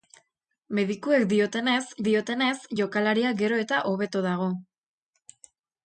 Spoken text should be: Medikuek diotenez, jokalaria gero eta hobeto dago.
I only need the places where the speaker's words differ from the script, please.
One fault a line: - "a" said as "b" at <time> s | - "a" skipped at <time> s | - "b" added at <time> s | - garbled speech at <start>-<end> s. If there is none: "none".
- "diotenez" added at 2.1 s